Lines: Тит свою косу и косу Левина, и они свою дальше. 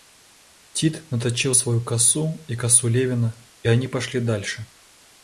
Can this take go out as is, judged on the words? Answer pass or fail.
fail